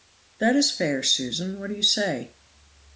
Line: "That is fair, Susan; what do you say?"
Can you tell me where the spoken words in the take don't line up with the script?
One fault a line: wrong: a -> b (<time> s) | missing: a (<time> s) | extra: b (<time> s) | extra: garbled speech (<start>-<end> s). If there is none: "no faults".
no faults